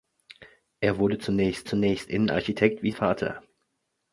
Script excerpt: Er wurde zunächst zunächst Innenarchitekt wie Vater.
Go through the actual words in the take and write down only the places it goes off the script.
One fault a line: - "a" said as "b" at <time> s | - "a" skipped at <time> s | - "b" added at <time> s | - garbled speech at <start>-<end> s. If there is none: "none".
none